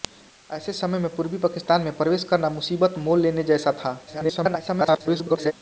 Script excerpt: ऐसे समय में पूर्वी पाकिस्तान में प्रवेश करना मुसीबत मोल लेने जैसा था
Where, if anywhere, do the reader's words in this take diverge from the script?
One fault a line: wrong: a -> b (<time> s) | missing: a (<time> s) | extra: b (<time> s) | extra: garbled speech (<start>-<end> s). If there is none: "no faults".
extra: garbled speech (4.1-5.5 s)